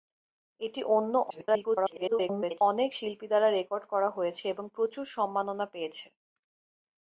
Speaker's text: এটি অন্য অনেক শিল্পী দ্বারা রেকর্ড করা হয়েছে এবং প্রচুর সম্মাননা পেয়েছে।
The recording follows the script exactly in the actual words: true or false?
false